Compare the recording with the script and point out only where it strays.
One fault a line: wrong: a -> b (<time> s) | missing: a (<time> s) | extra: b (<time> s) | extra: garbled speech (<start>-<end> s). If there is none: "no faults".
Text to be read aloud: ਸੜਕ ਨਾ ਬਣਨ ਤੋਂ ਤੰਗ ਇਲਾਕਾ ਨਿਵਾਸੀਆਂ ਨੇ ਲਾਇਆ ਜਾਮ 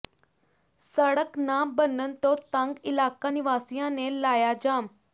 no faults